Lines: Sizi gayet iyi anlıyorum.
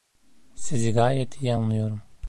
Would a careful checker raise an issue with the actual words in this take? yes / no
no